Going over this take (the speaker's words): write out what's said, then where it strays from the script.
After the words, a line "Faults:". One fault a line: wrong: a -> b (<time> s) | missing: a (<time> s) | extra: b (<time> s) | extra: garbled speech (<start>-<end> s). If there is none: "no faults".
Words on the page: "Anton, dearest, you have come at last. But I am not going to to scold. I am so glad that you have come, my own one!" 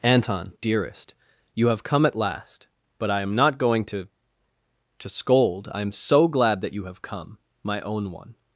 "Anton, dearest, you have come at last. But I am not going to to scold. I am so glad that you have come, my own one!"
Faults:
no faults